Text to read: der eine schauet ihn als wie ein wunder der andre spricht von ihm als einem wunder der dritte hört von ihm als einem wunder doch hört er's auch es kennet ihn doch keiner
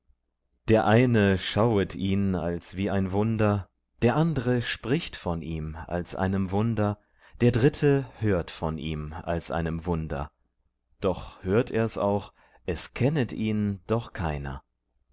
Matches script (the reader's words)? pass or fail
pass